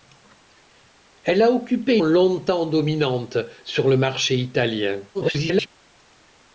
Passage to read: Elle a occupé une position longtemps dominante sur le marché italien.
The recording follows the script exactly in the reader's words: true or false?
false